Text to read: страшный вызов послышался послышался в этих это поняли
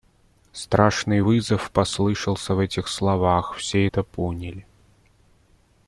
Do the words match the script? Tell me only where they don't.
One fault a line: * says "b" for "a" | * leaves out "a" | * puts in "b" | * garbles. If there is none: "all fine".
* leaves out "послышался"
* puts in "словах все"